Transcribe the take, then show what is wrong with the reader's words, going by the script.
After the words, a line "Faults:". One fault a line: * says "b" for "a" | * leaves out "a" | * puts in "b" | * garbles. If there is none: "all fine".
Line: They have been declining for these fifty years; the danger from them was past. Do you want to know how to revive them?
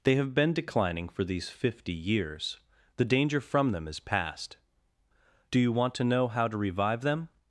They have been declining for these fifty years; the danger from them is past. Do you want to know how to revive them?
Faults:
* says "is" for "was"